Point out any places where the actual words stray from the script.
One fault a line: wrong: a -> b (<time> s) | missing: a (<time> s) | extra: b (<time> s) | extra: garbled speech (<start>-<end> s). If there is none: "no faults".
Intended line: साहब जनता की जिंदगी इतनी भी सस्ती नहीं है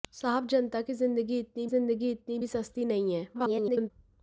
extra: जिंदगी इतनी (1.6 s)
extra: garbled speech (3.3-3.9 s)